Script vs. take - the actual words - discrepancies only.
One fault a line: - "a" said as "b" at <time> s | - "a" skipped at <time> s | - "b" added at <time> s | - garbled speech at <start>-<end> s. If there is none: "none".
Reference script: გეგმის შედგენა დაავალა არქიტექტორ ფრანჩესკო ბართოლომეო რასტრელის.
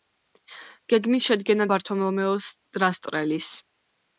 - "დაავალა არქიტექტორ ფრანჩესკო" skipped at 1.7 s